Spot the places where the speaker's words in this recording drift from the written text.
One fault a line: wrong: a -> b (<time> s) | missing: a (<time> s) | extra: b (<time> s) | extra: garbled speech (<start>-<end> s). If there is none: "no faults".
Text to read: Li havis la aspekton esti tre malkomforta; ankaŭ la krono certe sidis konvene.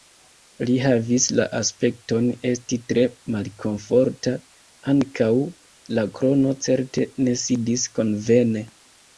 extra: ne (7.3 s)